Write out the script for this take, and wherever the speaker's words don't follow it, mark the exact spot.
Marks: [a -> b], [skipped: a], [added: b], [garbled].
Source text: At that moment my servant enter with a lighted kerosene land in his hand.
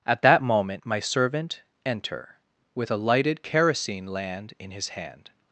At that moment my servant enter with a lighted kerosene land in his hand.